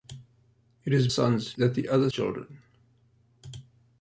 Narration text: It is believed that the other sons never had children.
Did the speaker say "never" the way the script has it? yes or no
no